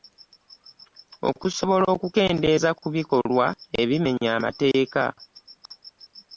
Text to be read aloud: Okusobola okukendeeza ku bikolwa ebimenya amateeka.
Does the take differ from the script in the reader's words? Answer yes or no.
no